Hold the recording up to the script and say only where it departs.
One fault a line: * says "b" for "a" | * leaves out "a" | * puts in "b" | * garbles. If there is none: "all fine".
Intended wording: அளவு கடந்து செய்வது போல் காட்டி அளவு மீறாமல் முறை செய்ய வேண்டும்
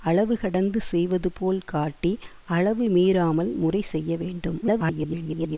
* garbles